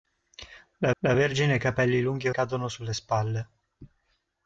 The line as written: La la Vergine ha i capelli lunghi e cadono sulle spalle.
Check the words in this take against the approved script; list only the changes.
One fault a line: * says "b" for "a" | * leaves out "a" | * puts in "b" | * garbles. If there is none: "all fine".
all fine